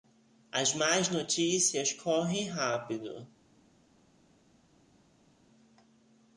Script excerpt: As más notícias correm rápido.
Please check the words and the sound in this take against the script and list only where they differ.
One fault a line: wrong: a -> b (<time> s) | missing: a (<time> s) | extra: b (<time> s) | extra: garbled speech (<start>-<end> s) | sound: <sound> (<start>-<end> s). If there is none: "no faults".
no faults